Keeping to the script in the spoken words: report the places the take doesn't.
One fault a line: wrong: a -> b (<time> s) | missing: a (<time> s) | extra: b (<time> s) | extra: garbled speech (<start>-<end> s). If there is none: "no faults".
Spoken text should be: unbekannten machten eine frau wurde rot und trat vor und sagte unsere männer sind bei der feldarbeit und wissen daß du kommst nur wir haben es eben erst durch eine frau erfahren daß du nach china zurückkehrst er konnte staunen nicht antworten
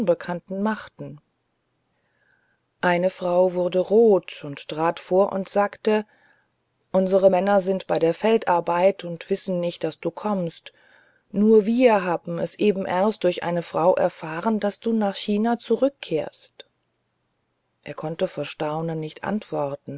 extra: nicht (9.6 s)
extra: vor (18.3 s)